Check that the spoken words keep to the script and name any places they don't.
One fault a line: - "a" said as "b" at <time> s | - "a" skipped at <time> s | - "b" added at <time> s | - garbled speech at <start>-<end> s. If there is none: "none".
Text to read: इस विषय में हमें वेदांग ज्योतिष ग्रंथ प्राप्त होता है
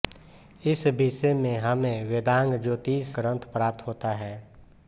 none